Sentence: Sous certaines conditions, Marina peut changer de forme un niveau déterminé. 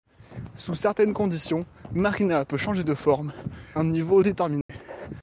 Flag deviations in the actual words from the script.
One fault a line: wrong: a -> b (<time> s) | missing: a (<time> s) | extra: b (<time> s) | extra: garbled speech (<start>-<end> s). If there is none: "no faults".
no faults